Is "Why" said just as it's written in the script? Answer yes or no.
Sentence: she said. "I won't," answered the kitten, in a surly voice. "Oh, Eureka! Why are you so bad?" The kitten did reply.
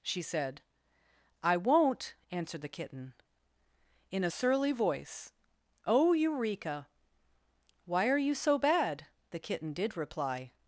yes